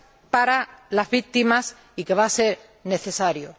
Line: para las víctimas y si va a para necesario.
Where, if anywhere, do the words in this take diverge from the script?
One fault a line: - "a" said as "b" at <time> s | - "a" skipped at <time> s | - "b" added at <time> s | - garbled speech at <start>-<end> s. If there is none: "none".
- "si" said as "que" at 2.0 s
- "para" said as "ser" at 2.3 s